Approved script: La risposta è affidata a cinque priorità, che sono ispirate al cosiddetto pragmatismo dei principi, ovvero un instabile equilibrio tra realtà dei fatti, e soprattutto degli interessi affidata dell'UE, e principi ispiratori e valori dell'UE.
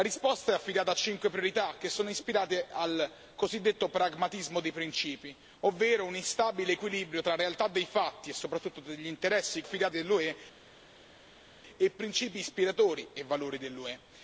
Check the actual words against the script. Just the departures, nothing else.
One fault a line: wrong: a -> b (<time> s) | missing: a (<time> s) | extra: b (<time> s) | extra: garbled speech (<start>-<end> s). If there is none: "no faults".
no faults